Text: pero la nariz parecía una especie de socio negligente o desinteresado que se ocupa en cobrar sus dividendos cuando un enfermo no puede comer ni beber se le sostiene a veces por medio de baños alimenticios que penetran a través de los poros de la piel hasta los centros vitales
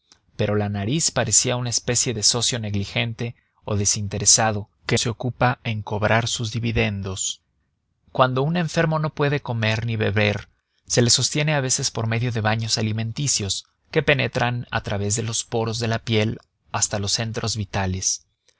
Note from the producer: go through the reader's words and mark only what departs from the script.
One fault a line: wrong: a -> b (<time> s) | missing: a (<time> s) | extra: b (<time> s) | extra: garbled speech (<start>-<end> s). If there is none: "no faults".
no faults